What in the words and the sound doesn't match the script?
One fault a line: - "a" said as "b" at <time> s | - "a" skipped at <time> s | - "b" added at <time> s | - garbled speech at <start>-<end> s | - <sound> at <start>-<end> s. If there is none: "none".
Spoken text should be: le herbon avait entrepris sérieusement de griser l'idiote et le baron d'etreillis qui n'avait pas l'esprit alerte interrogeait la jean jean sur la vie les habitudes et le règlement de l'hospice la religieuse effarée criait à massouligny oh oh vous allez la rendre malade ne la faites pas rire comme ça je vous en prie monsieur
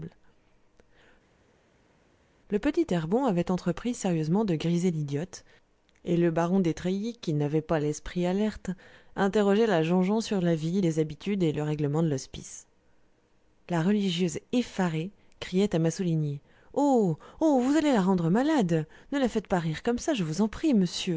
- "petit" added at 2.6 s